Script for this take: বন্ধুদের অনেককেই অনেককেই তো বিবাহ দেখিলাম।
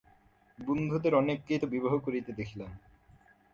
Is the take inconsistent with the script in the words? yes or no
yes